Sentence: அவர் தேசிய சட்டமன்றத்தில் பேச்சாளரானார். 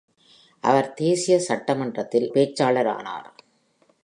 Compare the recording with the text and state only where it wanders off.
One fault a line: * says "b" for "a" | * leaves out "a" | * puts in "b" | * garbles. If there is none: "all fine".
all fine